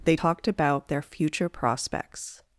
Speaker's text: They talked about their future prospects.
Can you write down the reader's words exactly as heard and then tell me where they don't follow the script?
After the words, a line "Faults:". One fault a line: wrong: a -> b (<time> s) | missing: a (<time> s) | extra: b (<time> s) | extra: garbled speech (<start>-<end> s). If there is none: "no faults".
They talked about their future prospects.
Faults:
no faults